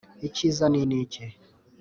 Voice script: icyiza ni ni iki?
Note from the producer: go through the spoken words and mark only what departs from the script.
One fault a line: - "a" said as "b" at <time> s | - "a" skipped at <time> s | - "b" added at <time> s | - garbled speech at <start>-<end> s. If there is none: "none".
none